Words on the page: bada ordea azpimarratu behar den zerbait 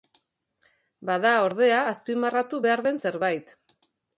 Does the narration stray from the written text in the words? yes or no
no